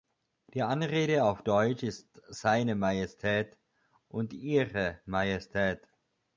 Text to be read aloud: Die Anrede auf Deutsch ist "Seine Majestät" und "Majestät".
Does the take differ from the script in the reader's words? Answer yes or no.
yes